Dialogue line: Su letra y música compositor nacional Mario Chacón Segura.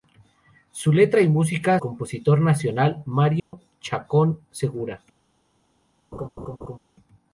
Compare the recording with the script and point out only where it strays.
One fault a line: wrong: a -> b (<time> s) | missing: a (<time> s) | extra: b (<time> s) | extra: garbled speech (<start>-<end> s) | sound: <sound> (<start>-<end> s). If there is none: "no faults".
sound: dropout (3.4-3.5 s)
sound: laugh (6.1-6.8 s)